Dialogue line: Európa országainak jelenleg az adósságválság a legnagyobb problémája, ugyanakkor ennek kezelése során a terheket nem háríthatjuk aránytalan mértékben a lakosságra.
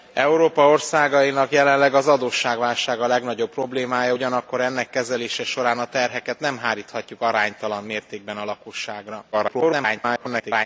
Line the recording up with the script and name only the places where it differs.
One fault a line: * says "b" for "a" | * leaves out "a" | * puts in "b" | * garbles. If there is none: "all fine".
* garbles